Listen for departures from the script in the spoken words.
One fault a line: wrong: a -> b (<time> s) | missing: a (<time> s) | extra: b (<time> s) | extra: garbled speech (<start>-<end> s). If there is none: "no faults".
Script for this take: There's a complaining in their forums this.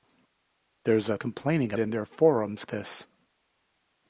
no faults